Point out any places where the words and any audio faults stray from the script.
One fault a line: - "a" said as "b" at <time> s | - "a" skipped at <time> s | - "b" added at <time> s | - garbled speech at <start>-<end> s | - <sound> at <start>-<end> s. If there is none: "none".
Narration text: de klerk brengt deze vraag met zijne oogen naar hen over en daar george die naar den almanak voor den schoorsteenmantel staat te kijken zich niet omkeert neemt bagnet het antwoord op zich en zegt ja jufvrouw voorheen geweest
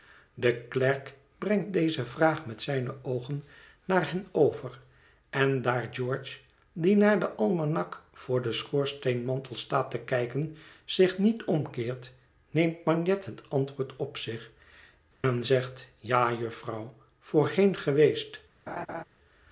- dropout at 15.1-15.2 s
- laugh at 18.7-19.0 s